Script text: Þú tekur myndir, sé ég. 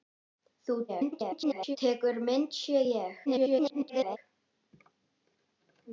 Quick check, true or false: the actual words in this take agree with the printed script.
false